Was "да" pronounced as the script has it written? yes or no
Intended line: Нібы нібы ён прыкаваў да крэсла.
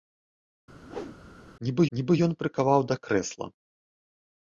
yes